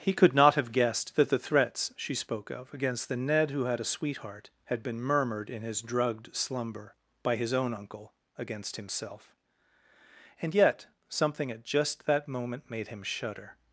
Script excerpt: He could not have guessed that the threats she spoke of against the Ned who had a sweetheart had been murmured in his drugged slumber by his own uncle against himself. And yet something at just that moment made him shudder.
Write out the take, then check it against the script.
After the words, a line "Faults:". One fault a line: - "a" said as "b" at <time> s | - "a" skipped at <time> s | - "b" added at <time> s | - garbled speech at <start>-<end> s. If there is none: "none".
He could not have guessed that the threats she spoke of against the Ned who had a sweetheart had been murmured in his drugged slumber by his own uncle against himself. And yet something at just that moment made him shudder.
Faults:
none